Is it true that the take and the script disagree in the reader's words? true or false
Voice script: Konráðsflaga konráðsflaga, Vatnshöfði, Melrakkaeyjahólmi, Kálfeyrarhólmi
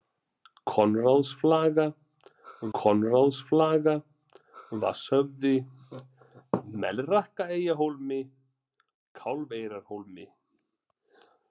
false